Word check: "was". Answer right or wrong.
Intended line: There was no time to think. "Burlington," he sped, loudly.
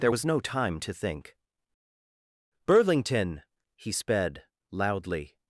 right